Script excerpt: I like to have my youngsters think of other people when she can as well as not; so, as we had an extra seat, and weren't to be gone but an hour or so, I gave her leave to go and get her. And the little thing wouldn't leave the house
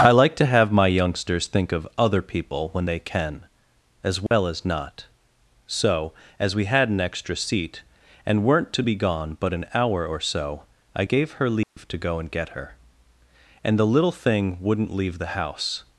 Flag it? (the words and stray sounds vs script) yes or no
yes